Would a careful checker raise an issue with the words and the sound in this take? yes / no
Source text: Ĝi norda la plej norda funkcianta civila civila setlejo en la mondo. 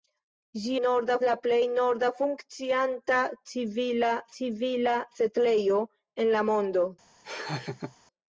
yes